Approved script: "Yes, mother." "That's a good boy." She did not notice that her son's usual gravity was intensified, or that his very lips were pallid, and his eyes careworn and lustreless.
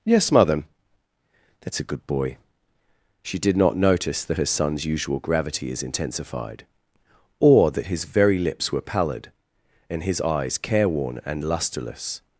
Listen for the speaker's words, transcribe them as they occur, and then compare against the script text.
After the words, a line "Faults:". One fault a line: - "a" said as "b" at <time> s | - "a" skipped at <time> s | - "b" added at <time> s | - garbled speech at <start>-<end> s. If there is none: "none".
"Yes, mother." "That's a good boy." She did not notice that her son's usual gravity is intensified, or that his very lips were pallid, and his eyes careworn and lustreless.
Faults:
- "was" said as "is" at 5.7 s